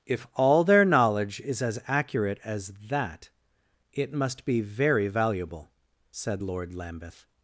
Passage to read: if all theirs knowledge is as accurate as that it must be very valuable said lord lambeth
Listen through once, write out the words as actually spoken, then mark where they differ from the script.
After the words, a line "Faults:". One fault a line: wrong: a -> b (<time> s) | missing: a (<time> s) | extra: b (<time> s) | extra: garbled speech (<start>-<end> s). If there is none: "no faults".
if all their knowledge is as accurate as that it must be very valuable said lord lambeth
Faults:
wrong: theirs -> their (0.6 s)